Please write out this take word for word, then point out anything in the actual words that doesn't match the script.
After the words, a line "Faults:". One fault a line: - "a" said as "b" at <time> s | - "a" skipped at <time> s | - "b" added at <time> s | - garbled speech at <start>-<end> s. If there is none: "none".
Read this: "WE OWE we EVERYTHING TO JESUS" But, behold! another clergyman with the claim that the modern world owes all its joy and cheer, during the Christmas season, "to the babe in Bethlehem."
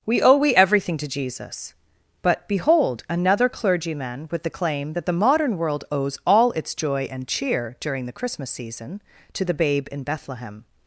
"WE OWE we EVERYTHING TO JESUS" But, behold! another clergyman with the claim that the modern world owes all its joy and cheer, during the Christmas season, "to the babe in Bethlehem."
Faults:
none